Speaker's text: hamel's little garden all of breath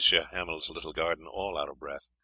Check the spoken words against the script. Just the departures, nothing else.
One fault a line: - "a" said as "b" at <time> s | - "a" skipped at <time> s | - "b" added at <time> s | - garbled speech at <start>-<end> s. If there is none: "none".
- "out" added at 1.6 s